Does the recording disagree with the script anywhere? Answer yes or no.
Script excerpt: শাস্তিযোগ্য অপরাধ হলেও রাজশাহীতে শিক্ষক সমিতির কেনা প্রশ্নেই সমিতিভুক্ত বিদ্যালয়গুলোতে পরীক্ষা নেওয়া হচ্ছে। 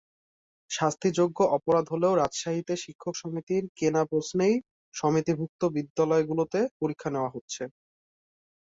no